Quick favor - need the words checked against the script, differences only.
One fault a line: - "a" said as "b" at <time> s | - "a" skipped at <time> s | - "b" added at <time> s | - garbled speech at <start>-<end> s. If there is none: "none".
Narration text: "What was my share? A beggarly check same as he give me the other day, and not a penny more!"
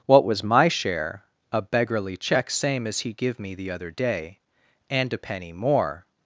- "not" skipped at 5.1 s